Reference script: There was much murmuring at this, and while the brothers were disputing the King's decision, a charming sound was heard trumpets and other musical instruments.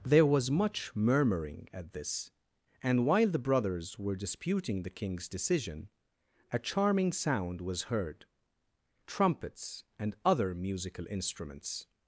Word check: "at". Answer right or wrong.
right